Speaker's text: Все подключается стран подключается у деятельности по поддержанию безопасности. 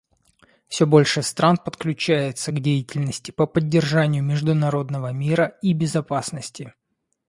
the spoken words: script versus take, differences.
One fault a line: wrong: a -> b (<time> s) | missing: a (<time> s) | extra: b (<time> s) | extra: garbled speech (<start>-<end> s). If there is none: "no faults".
wrong: подключается -> больше (0.9 s)
wrong: у -> к (2.5 s)
extra: международного мира и (4.2 s)